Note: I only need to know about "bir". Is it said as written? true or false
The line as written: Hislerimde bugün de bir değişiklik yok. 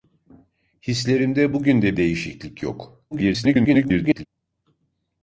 false